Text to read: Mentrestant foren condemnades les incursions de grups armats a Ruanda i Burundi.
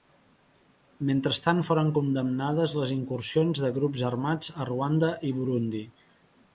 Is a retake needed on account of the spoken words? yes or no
no